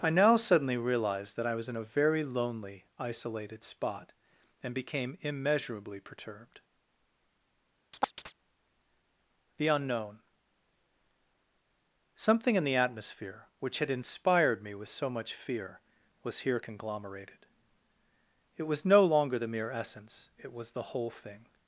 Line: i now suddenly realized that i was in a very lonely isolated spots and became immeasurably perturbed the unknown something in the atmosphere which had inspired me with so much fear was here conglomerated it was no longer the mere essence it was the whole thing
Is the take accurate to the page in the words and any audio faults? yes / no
no